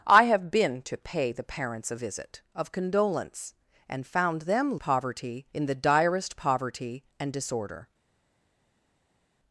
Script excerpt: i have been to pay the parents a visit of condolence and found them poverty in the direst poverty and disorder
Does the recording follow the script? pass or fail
pass